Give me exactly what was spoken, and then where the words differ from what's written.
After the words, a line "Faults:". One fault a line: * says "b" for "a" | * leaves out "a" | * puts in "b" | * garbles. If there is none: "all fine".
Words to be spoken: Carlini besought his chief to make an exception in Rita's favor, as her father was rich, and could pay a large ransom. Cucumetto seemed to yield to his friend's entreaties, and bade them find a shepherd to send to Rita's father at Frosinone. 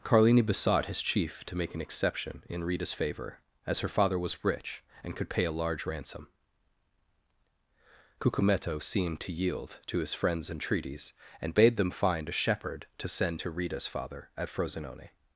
Carlini besought his chief to make an exception in Rita's favor, as her father was rich, and could pay a large ransom. Cucumetto seemed to yield to his friend's entreaties, and bade them find a shepherd to send to Rita's father at Frosinone.
Faults:
all fine